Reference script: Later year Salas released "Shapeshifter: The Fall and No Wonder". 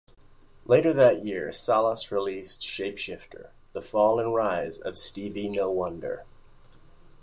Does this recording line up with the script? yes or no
no